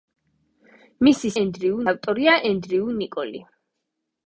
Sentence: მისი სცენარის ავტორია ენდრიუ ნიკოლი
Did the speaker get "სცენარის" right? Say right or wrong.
wrong